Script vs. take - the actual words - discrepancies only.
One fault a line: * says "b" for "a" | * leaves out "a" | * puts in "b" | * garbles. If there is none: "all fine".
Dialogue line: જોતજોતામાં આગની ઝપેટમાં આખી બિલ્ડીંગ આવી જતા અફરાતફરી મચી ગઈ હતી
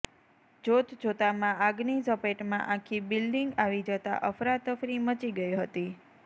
all fine